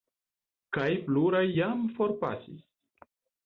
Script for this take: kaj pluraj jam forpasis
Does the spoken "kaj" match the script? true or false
true